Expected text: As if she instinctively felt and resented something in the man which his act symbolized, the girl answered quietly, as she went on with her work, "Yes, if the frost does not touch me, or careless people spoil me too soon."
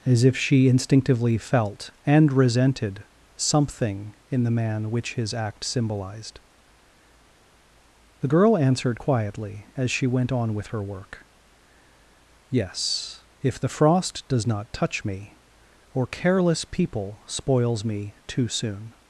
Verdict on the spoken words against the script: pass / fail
fail